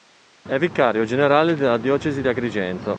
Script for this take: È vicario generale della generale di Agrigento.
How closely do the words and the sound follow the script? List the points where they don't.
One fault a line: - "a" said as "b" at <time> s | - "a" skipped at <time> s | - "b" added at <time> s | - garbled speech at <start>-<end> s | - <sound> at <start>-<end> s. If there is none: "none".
- "generale" said as "diocesi" at 1.8 s